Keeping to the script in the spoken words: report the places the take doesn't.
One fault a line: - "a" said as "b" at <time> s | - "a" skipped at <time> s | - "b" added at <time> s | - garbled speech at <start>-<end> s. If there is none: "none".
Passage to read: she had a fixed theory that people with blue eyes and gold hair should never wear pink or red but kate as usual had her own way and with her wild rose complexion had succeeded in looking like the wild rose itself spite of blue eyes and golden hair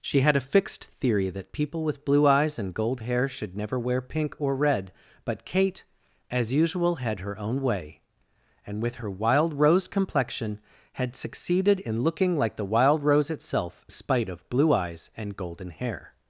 none